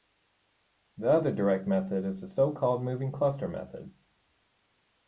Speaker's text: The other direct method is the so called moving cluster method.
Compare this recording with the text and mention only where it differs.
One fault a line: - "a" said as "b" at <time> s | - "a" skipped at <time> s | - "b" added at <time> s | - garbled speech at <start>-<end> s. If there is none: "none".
none